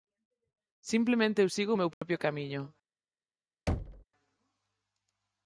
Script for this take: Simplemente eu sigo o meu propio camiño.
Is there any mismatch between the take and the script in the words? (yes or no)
no